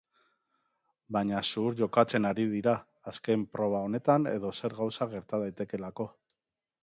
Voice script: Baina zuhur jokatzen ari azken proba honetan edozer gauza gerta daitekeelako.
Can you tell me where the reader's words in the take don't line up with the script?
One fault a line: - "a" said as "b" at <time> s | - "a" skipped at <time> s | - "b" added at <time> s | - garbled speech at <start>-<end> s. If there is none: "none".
- "dira" added at 2.5 s